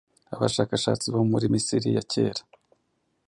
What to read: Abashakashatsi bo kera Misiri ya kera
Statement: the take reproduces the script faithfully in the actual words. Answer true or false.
false